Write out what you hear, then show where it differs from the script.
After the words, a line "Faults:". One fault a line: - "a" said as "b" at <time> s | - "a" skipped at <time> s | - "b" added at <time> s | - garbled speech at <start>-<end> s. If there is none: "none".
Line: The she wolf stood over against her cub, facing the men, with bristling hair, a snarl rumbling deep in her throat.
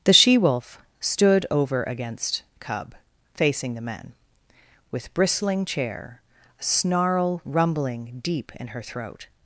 The she wolf stood over against cub, facing the men, with bristling chair, a snarl rumbling deep in her throat.
Faults:
- "her" skipped at 2.4 s
- "hair" said as "chair" at 5.6 s